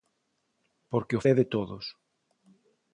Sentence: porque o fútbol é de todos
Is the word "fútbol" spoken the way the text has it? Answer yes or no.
no